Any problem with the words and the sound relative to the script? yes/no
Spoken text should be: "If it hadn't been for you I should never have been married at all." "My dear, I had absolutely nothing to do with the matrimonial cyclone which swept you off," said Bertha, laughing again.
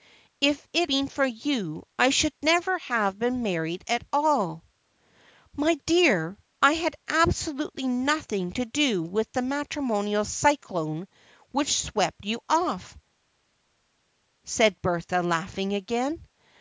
yes